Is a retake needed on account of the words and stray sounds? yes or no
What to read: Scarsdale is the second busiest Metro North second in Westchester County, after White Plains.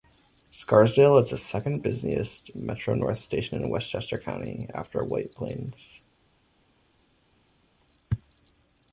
yes